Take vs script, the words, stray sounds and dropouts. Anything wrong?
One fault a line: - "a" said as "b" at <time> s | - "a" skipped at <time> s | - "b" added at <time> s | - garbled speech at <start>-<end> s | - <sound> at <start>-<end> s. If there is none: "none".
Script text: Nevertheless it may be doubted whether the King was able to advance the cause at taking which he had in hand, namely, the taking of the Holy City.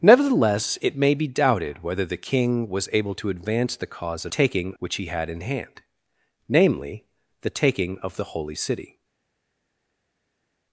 none